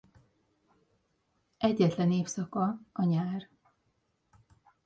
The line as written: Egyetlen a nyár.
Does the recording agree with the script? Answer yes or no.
no